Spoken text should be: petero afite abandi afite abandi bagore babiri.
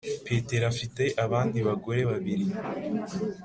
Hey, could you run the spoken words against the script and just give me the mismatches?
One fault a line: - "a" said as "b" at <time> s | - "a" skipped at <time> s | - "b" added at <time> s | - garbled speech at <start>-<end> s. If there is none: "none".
- "afite abandi" skipped at 1.6 s